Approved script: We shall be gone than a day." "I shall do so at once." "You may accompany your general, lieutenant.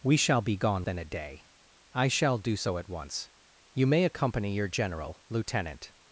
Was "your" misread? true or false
false